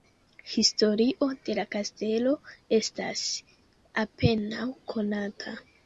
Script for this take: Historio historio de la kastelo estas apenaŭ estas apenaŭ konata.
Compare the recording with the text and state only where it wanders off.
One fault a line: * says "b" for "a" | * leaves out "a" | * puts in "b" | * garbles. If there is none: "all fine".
* leaves out "historio"
* leaves out "estas apenaŭ"